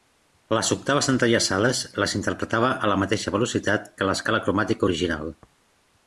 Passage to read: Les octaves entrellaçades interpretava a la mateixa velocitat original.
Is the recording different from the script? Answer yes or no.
yes